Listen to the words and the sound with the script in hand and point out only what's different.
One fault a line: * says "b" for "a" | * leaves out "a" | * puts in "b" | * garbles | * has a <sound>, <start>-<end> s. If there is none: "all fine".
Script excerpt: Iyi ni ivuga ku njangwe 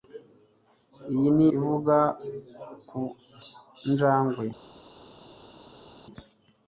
all fine